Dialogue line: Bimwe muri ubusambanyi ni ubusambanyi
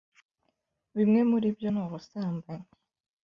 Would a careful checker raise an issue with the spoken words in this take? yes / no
yes